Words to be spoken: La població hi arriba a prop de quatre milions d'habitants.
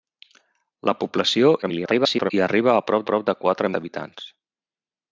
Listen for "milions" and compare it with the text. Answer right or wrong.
wrong